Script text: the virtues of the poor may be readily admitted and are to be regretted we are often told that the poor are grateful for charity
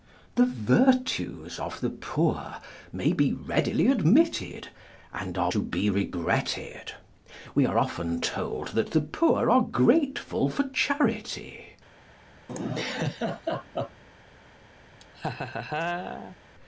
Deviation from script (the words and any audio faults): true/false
true